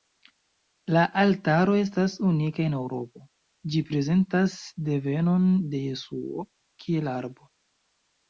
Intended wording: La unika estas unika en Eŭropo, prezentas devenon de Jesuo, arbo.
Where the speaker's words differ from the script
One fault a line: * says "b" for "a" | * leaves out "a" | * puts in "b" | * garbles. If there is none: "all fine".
* says "altaro" for "unika"
* puts in "ĝi"
* puts in "kiel"